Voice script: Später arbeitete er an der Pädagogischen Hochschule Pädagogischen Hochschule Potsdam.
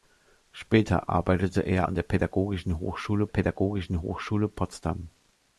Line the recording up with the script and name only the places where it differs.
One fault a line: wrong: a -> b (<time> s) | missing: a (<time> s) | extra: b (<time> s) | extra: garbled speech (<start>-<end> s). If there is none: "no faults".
no faults